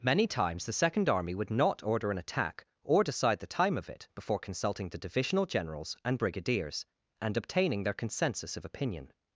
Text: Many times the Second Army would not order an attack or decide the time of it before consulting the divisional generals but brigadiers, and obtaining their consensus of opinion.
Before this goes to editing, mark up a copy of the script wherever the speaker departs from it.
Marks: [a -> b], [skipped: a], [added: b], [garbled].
Many times the Second Army would not order an attack or decide the time of it before consulting the divisional generals [but -> and] brigadiers, and obtaining their consensus of opinion.